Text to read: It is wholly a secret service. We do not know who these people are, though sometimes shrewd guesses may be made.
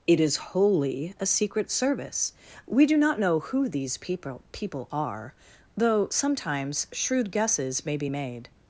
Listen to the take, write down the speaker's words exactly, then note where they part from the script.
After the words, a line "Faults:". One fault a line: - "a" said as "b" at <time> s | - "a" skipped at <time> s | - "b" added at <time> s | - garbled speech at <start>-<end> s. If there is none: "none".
It is wholly a secret service. We do not know who these people people are, though sometimes shrewd guesses may be made.
Faults:
- "people" added at 4.5 s